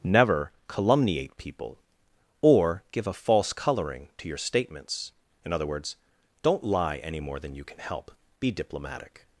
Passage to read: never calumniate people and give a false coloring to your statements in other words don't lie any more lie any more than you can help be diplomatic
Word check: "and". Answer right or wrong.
wrong